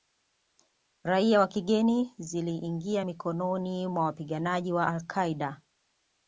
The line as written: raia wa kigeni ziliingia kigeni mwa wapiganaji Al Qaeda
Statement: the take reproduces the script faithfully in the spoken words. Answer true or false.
false